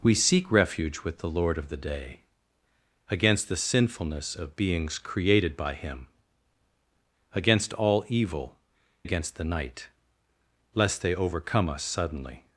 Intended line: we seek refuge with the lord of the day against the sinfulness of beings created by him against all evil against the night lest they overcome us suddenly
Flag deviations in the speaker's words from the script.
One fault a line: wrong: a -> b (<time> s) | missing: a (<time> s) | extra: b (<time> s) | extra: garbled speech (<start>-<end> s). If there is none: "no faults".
no faults